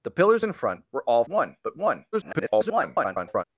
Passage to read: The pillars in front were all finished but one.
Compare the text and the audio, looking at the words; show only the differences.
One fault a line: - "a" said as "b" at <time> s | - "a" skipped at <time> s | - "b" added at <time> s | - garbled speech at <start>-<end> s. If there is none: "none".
- "finished" said as "one" at 1.3 s
- garbled speech at 2.1-3.4 s